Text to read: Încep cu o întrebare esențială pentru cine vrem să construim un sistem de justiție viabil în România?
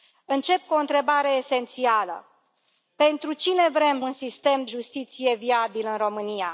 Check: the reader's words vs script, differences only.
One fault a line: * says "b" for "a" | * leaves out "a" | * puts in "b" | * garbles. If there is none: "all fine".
* leaves out "să construim"
* leaves out "de"